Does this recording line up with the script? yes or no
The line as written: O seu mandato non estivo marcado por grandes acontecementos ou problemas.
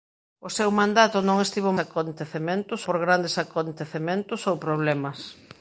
no